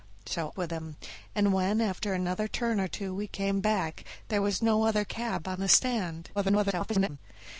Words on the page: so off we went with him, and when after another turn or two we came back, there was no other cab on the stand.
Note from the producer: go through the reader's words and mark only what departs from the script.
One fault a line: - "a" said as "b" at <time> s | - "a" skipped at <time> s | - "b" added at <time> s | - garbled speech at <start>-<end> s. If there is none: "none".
- "off we went" skipped at 0.6 s
- garbled speech at 6.3-7.2 s